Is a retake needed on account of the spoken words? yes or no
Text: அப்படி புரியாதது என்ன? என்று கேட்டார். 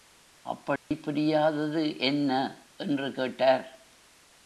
no